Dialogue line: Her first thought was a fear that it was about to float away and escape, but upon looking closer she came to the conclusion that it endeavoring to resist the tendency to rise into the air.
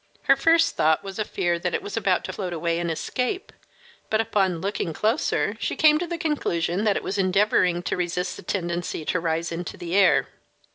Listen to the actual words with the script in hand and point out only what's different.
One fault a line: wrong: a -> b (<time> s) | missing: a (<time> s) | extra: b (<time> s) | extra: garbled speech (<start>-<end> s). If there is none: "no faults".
extra: was (7.0 s)